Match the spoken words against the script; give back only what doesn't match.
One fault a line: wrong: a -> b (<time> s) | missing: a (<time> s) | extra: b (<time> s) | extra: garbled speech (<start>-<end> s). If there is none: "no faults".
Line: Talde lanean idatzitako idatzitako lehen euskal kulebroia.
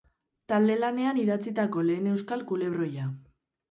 missing: idatzitako (1.9 s)